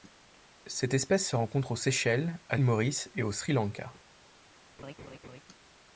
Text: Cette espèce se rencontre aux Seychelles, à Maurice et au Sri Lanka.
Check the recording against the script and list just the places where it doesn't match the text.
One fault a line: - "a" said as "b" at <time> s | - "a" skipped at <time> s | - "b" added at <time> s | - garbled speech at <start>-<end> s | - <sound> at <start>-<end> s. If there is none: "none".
- laugh at 4.8-5.4 s